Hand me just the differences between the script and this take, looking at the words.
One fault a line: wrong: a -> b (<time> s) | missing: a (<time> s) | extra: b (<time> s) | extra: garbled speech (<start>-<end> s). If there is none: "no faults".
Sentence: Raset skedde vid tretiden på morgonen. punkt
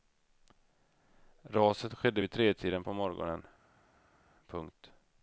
no faults